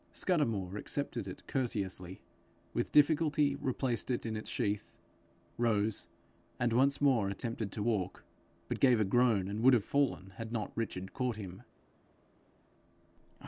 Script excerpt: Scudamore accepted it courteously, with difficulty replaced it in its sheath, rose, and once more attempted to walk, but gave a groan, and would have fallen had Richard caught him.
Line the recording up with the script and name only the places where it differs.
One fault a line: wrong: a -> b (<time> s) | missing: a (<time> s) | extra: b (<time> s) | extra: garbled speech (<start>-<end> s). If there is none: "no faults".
extra: not (10.5 s)